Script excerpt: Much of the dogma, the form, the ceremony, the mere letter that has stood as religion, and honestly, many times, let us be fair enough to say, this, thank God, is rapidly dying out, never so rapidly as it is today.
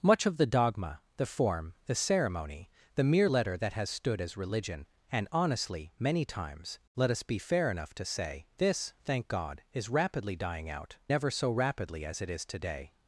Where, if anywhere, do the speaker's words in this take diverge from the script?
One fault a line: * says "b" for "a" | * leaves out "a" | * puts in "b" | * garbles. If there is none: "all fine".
all fine